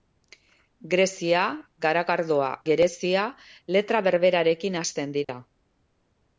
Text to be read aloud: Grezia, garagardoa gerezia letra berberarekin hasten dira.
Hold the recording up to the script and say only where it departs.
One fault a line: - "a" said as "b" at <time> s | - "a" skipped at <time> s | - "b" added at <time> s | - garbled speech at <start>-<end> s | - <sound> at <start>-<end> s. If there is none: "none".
- dropout at 5.2-5.3 s